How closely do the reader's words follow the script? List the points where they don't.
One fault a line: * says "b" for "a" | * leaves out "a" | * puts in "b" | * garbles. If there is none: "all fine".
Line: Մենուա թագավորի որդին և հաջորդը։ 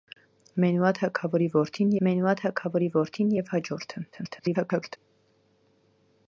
* puts in "մենուա թագավորի որդին"
* garbles